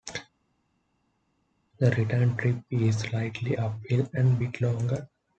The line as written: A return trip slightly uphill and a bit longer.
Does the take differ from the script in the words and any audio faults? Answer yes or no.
yes